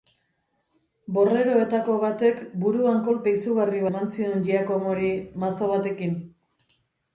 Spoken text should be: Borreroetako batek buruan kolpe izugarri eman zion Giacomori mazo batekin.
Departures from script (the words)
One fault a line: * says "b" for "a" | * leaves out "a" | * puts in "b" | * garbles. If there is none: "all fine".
all fine